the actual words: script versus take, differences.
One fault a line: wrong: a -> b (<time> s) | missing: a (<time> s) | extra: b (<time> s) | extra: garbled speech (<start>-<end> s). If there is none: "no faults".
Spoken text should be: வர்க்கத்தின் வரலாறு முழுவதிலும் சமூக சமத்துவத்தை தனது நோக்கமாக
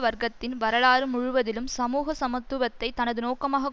no faults